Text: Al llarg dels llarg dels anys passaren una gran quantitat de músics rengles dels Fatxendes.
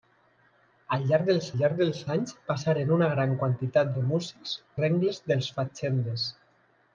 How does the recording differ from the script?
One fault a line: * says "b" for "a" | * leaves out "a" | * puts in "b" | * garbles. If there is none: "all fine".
all fine